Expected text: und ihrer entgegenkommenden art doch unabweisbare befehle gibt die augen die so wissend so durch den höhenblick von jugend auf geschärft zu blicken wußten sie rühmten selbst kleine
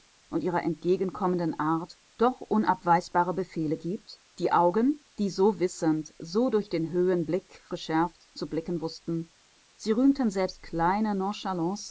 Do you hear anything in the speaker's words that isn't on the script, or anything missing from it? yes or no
yes